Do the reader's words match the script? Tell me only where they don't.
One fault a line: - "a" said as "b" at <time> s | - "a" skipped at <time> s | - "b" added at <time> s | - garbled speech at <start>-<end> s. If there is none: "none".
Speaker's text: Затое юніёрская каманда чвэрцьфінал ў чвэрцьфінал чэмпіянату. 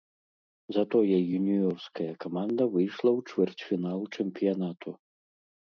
- "чвэрцьфінал" said as "выйшла" at 2.8 s